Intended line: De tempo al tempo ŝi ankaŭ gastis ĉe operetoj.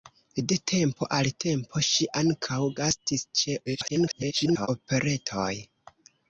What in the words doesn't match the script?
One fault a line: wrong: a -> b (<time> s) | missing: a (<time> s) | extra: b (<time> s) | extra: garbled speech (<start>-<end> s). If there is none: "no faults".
extra: garbled speech (3.7-4.7 s)